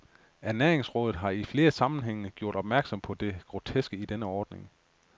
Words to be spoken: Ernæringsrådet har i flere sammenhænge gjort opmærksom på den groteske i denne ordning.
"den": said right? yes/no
no